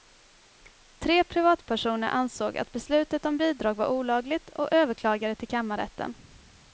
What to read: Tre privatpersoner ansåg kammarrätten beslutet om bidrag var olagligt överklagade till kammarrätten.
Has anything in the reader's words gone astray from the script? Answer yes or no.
yes